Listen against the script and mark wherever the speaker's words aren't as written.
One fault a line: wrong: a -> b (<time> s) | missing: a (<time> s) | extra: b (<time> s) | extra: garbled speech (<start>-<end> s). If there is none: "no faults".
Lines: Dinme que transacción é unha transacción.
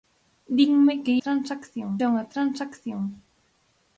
no faults